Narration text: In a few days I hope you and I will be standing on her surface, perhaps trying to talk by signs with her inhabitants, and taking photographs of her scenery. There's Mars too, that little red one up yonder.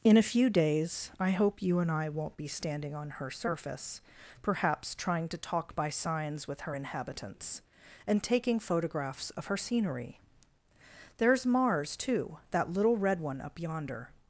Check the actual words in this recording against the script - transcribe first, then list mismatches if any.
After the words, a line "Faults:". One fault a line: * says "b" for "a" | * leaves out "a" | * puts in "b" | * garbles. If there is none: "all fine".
In a few days I hope you and I won't be standing on her surface, perhaps trying to talk by signs with her inhabitants, and taking photographs of her scenery. There's Mars too, that little red one up yonder.
Faults:
* says "won't" for "will"